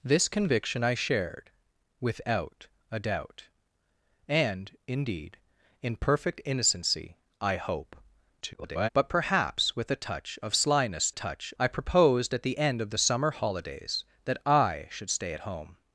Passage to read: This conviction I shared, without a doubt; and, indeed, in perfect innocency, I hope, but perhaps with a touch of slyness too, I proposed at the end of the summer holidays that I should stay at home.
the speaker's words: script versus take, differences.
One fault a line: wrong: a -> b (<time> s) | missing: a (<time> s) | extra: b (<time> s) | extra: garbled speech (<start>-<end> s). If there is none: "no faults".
extra: garbled speech (8.4-8.9 s)
wrong: too -> touch (11.1 s)